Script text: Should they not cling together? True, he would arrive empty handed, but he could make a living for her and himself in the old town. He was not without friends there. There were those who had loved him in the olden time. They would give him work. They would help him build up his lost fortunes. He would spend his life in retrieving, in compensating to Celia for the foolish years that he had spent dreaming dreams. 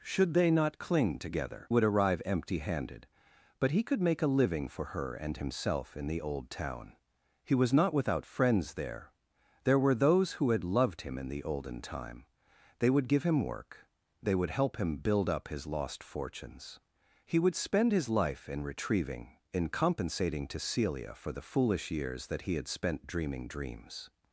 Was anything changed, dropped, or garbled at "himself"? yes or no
no